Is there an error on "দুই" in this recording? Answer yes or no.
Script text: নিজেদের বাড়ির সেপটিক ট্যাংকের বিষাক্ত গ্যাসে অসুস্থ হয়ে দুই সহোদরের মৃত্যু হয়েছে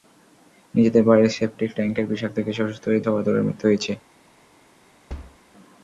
yes